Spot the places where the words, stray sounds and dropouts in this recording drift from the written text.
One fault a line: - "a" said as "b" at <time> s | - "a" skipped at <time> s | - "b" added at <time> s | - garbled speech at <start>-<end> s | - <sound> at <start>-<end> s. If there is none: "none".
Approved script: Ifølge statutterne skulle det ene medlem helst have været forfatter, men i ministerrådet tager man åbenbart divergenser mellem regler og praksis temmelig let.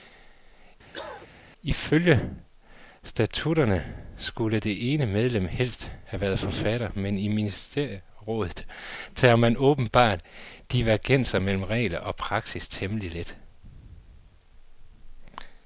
- cough at 0.9-1.3 s